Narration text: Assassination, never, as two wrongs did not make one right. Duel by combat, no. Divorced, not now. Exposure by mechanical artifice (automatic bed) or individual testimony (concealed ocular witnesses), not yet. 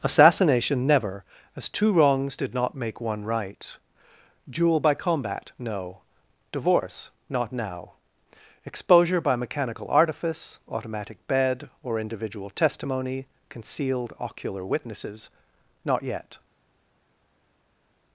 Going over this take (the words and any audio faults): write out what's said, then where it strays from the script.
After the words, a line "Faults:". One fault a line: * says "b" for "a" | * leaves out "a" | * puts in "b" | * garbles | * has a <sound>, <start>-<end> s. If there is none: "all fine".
Assassination, never, as two wrongs did not make one right. Duel by combat, no. Divorce, not now. Exposure by mechanical artifice (automatic bed) or individual testimony (concealed ocular witnesses), not yet.
Faults:
* says "Divorce" for "Divorced"